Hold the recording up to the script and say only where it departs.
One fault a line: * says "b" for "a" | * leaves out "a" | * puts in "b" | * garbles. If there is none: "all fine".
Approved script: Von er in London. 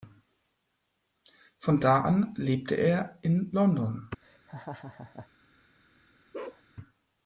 * puts in "da an lebte"